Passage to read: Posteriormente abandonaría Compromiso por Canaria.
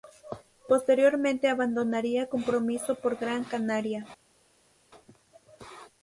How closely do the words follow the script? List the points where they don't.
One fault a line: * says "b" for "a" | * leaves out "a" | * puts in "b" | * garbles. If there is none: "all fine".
* puts in "Gran"